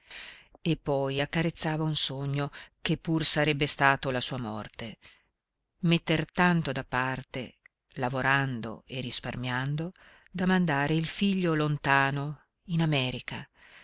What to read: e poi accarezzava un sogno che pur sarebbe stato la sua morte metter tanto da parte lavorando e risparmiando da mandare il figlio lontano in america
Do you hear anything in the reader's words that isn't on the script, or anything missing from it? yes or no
no